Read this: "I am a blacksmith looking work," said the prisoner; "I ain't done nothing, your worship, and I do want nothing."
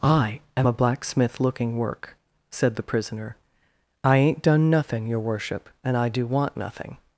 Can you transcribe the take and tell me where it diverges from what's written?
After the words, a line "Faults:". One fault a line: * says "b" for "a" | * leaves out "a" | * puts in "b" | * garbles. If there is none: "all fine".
"I am a blacksmith looking work," said the prisoner; "I ain't done nothing, your worship, and I do want nothing."
Faults:
all fine